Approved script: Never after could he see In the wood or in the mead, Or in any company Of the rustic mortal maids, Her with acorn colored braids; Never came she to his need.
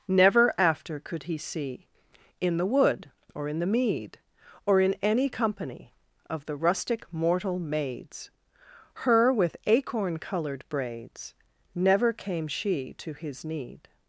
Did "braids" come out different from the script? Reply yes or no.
no